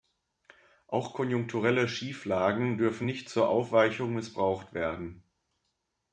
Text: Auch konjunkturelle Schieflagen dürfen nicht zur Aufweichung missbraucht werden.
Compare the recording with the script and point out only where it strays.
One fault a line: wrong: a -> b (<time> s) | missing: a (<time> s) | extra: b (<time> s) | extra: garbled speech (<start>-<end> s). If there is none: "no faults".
no faults